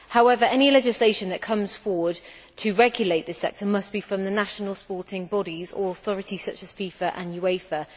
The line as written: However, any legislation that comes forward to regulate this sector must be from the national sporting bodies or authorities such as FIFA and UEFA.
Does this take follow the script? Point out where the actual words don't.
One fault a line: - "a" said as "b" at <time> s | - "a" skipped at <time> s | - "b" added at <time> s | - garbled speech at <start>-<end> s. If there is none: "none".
none